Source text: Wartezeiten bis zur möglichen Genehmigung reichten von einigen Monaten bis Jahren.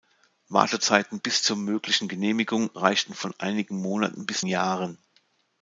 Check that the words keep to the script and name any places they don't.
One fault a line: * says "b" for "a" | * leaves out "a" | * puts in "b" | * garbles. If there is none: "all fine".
all fine